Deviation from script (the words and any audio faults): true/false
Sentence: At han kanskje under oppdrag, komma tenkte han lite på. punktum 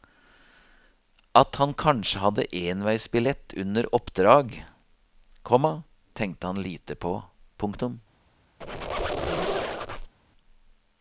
true